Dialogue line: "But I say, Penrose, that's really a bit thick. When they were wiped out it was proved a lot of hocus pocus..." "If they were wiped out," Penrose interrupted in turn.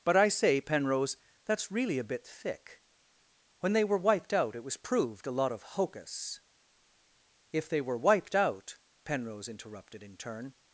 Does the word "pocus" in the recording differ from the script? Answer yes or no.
yes